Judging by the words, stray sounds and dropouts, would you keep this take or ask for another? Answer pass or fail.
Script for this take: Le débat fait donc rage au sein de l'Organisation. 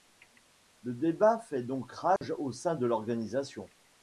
fail